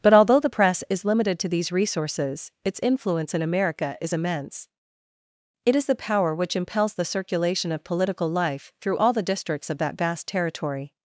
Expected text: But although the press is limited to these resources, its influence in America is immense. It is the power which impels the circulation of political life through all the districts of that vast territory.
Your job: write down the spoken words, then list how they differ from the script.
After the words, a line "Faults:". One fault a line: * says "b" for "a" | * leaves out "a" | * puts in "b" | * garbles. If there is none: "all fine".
But although the press is limited to these resources, its influence in America is immense. It is the power which impels the circulation of political life through all the districts of that vast territory.
Faults:
all fine